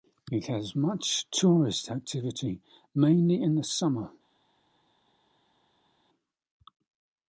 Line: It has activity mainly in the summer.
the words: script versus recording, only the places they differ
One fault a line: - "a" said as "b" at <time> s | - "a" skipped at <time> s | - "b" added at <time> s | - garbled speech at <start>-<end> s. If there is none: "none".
- "much tourist" added at 0.8 s